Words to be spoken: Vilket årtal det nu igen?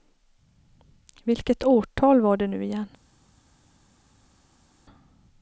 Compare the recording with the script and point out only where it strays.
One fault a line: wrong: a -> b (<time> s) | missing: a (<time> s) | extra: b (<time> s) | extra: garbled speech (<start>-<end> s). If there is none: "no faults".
extra: var (2.2 s)